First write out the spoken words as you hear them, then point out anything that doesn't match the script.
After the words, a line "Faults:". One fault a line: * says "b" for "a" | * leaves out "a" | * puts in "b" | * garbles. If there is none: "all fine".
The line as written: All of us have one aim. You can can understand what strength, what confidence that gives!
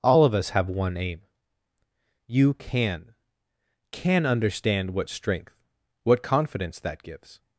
All of us have one aim. You can can understand what strength, what confidence that gives!
Faults:
all fine